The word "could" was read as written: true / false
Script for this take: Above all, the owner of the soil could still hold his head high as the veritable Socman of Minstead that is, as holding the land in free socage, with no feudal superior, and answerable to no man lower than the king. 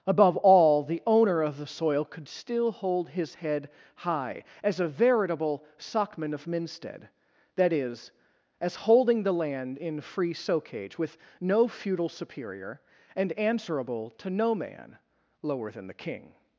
true